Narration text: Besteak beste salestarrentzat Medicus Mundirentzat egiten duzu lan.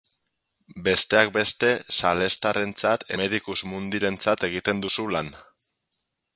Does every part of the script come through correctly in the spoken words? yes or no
yes